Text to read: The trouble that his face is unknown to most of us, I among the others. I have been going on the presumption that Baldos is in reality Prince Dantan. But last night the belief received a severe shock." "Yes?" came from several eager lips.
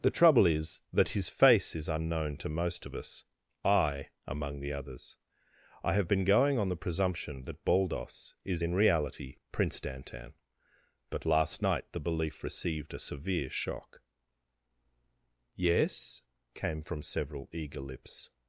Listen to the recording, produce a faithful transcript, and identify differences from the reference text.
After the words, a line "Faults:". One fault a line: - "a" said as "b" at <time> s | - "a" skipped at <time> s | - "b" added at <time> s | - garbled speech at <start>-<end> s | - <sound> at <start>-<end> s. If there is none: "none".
The trouble is that his face is unknown to most of us, I among the others. I have been going on the presumption that Baldos is in reality Prince Dantan. But last night the belief received a severe shock." "Yes?" came from several eager lips.
Faults:
- "is" added at 0.5 s